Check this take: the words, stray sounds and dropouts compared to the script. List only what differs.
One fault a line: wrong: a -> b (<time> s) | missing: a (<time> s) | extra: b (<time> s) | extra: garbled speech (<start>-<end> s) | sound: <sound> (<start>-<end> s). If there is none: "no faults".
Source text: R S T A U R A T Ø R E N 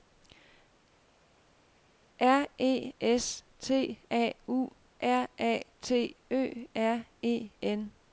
extra: E (2.6 s)